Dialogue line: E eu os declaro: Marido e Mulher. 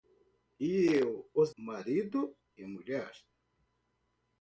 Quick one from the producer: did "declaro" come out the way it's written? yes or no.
no